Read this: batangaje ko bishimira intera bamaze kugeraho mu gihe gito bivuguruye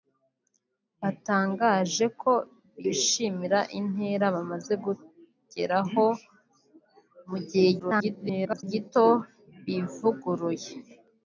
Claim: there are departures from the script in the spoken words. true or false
true